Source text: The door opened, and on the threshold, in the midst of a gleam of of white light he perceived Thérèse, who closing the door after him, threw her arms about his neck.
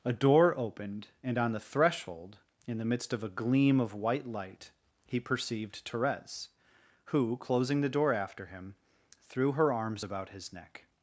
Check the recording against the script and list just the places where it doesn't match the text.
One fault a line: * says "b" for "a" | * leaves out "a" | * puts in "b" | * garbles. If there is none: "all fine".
* says "A" for "The"
* leaves out "of"